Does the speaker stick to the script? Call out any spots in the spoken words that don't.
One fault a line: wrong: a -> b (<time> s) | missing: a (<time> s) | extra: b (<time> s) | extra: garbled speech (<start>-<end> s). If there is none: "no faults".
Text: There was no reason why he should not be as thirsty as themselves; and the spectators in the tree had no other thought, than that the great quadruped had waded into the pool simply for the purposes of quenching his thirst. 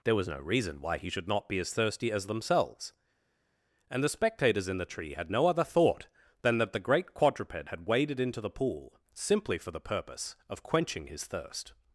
wrong: purposes -> purpose (9.8 s)